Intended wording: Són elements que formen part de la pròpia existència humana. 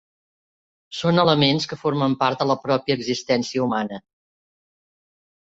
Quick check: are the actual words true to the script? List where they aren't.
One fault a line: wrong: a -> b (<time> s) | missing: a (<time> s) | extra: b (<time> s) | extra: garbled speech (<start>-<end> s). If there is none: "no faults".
no faults